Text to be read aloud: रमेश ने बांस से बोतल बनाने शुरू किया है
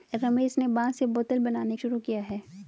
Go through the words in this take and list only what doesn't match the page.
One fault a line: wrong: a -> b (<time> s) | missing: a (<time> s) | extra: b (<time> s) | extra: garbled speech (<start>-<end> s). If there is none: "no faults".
no faults